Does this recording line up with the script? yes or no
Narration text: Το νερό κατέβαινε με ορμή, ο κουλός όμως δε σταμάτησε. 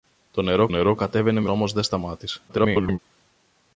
no